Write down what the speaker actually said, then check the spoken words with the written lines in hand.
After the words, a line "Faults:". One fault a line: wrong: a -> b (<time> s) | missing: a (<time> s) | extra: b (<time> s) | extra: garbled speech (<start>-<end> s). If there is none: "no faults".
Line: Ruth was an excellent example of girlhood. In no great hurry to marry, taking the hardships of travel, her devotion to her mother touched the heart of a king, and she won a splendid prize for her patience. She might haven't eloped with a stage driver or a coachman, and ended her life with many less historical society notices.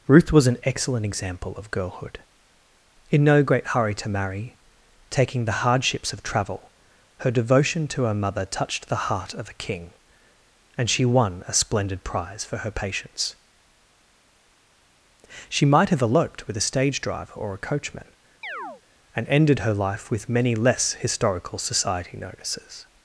Ruth was an excellent example of girlhood. In no great hurry to marry, taking the hardships of travel, her devotion to her mother touched the heart of a king, and she won a splendid prize for her patience. She might have eloped with a stage driver or a coachman, and ended her life with many less historical society notices.
Faults:
wrong: haven't -> have (15.9 s)